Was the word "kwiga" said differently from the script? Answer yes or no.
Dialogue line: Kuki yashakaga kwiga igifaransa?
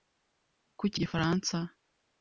yes